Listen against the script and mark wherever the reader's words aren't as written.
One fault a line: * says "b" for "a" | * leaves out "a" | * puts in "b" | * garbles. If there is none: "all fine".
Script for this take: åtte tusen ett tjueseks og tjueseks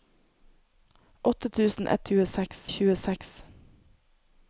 all fine